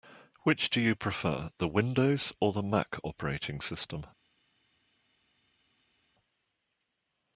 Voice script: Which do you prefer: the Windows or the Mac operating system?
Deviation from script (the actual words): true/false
false